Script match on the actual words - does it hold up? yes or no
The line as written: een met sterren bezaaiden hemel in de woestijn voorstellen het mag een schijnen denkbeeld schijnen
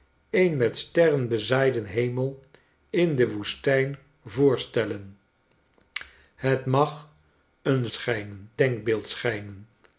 yes